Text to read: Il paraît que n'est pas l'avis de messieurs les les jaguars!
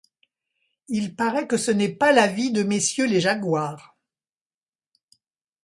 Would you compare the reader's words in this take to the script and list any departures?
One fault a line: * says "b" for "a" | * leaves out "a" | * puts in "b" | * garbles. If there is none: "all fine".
* puts in "ce"
* leaves out "les"